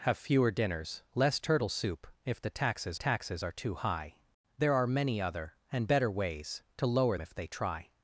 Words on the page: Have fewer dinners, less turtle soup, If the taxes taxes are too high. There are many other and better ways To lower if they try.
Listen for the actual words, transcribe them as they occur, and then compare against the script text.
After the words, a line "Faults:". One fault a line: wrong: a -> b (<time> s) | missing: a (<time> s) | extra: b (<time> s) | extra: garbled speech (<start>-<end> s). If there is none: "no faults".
Have fewer dinners, less turtle soup, If the taxes taxes are too high. There are many other and better ways To lower if they try.
Faults:
no faults